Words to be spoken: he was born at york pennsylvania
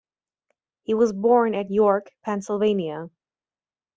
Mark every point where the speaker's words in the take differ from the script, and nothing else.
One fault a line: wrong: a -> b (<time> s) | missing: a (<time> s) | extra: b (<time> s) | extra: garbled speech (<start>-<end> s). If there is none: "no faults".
no faults